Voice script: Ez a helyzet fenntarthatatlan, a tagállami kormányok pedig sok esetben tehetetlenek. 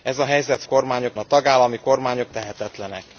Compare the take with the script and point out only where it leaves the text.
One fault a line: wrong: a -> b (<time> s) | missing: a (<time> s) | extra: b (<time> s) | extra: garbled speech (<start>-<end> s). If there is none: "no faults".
wrong: fenntarthatatlan -> kormányok (0.6 s)
missing: pedig sok esetben (2.3 s)